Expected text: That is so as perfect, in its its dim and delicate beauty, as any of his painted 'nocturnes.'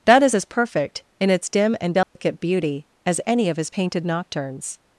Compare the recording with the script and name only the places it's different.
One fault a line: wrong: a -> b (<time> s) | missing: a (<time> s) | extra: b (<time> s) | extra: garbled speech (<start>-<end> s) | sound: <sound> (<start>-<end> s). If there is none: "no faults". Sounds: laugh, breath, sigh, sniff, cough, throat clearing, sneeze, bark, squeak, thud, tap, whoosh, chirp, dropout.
missing: so (0.3 s)
missing: its (1.5 s)
sound: dropout (2.0-2.2 s)